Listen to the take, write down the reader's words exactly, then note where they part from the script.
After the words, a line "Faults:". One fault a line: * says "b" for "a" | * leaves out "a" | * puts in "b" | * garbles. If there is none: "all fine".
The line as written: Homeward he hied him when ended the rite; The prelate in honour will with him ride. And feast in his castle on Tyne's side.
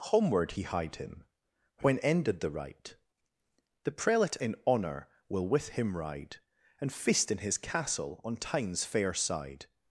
Homeward he hied him when ended the rite; The prelate in honour will with him ride. And feast in his castle on Tyne's fair side.
Faults:
* puts in "fair"